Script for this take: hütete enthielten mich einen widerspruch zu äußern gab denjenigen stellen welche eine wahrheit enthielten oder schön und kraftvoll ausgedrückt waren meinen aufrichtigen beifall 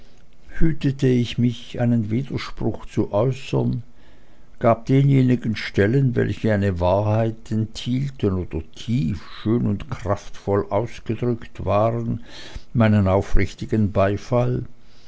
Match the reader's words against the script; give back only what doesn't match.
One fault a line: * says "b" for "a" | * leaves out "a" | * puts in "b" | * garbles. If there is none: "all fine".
* says "ich" for "enthielten"
* puts in "tief"